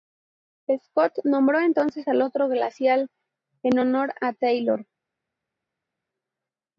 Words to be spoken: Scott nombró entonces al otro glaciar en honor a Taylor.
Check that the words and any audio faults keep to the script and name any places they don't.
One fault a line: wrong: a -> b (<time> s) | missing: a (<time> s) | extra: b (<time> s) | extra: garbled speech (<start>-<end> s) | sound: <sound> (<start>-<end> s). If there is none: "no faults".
no faults